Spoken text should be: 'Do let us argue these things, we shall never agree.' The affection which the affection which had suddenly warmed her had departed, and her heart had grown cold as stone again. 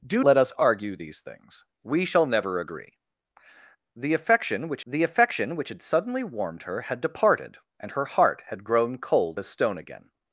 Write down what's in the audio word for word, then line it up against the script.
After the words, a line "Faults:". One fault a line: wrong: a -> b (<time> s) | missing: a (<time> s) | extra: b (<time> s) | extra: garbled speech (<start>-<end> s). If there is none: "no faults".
'Do let us argue these things, we shall never agree.' The affection which the affection which had suddenly warmed her had departed, and her heart had grown cold as stone again.
Faults:
no faults